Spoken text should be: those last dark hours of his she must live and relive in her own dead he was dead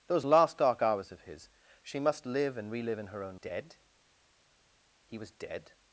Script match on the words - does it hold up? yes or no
yes